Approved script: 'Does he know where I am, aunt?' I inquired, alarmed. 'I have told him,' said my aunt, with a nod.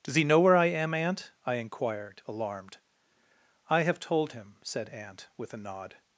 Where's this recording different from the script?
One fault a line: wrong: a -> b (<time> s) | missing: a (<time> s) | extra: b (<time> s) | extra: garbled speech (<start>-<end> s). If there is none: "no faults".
missing: my (4.9 s)